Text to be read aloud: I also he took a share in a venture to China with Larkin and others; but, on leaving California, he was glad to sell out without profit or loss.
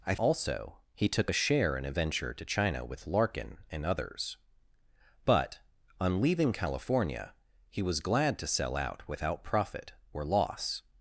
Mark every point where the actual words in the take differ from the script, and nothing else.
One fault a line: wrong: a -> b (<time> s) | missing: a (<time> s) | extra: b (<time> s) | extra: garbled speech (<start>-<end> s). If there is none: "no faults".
no faults